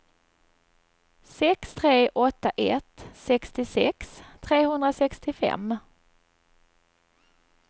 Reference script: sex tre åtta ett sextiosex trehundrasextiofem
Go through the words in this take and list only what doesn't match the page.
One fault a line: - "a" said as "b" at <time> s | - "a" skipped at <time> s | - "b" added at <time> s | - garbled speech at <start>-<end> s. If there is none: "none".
none